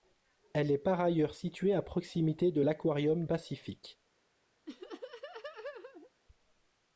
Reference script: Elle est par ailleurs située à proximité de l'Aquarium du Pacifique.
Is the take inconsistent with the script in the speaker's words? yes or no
yes